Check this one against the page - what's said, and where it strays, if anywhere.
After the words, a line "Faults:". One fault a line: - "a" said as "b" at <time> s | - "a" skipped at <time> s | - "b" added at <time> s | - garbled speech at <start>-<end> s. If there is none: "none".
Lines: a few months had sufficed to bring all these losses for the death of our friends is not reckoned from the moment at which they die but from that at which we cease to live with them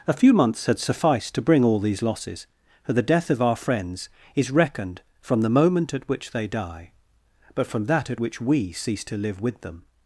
a few months had sufficed to bring all these losses for the death of our friends is reckoned from the moment at which they die but from that at which we cease to live with them
Faults:
- "not" skipped at 4.5 s